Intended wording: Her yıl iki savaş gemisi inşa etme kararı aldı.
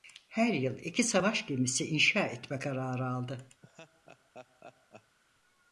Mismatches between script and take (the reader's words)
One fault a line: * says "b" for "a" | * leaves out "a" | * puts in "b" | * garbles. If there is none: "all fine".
all fine